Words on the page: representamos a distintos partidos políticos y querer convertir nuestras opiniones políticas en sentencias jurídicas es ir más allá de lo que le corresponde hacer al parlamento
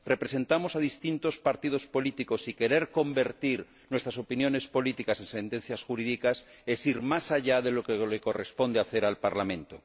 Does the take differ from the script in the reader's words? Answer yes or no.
no